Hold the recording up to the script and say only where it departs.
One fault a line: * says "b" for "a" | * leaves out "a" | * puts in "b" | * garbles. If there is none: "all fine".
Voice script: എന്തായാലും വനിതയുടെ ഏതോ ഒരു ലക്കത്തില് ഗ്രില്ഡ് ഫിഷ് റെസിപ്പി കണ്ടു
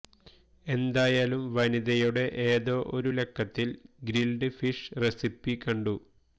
all fine